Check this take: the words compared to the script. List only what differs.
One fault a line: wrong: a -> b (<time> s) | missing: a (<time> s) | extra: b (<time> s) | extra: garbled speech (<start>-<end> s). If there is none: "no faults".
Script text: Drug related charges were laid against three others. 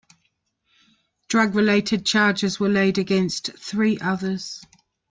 no faults